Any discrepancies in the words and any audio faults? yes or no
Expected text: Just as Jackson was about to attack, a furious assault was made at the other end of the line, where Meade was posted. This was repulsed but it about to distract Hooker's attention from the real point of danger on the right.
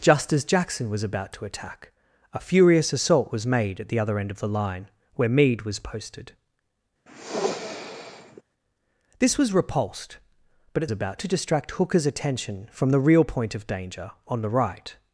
yes